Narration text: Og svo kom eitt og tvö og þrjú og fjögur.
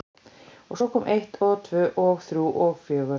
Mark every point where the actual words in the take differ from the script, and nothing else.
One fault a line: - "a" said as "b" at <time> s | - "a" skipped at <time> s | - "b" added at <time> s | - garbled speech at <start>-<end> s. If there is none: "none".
none